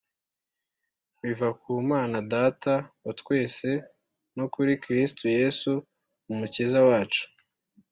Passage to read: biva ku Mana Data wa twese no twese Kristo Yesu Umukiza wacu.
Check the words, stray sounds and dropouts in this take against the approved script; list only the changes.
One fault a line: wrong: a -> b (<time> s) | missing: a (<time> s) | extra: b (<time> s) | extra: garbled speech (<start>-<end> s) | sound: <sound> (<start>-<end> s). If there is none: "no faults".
wrong: twese -> kuri (4.5 s)